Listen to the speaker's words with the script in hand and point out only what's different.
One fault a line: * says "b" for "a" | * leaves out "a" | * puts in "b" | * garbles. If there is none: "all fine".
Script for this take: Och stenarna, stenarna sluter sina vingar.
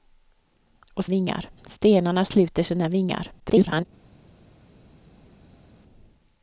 * says "vingar" for "stenarna"
* garbles